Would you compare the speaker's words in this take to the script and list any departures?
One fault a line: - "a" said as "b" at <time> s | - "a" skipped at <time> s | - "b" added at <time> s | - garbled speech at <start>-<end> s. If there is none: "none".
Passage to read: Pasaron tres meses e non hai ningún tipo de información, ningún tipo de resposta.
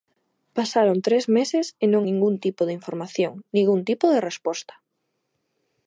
- "hai" skipped at 2.0 s